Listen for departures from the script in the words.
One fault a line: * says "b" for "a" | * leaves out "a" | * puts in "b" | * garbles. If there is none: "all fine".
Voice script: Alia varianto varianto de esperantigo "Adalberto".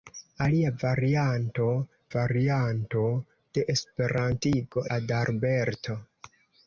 all fine